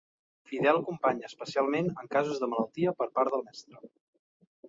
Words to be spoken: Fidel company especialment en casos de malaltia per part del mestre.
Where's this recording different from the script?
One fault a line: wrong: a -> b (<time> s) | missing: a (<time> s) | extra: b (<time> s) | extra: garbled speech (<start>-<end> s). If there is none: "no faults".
no faults